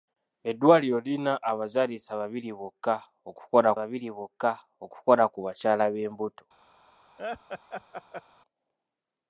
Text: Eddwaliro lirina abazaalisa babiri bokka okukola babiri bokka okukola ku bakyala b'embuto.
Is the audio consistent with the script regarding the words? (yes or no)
yes